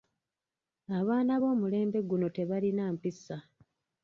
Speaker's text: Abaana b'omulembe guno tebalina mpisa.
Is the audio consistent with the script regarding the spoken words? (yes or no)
yes